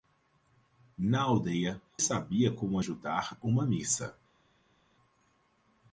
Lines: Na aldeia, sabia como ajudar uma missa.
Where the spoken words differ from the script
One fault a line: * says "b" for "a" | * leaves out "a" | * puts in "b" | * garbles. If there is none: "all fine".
all fine